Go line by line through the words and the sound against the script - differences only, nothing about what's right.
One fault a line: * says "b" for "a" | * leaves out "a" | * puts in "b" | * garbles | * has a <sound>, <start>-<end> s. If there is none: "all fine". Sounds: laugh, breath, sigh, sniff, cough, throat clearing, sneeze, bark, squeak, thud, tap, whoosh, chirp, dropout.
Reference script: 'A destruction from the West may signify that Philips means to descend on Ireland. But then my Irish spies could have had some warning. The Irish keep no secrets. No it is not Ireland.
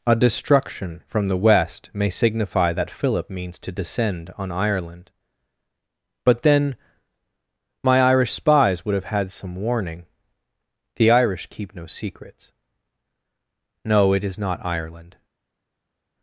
* says "Philip" for "Philips"
* says "would" for "could"